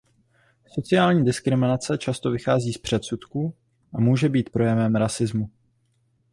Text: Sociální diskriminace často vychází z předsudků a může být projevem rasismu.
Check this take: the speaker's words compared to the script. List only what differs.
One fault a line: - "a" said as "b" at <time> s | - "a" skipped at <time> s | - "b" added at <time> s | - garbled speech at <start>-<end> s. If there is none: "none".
none